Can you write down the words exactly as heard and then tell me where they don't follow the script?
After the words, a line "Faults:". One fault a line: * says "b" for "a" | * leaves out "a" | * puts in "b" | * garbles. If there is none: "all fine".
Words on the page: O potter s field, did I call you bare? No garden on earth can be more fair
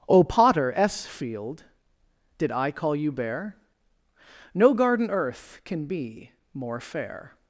O potter s field, did I call you bare? No garden earth can be more fair
Faults:
* leaves out "on"